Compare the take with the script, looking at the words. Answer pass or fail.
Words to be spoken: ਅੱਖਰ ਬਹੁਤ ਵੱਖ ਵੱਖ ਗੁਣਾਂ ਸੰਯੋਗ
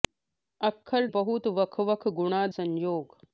pass